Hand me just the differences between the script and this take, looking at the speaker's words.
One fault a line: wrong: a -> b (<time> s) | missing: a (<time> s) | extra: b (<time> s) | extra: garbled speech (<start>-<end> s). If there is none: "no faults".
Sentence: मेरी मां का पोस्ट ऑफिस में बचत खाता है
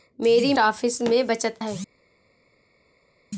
missing: मां का पोस्ट (0.5 s)
missing: खाता (1.6 s)